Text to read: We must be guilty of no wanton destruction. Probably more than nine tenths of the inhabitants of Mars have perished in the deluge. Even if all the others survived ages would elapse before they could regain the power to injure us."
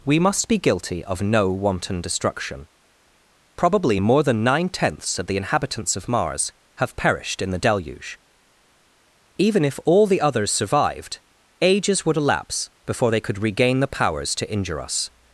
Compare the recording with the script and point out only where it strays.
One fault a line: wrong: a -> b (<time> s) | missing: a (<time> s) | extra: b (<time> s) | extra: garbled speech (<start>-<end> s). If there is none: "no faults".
wrong: power -> powers (13.9 s)